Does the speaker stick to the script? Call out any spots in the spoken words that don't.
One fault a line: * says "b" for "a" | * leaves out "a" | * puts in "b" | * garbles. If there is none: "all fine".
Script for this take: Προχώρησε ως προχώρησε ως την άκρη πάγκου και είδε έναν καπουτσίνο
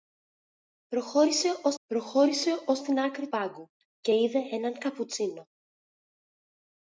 all fine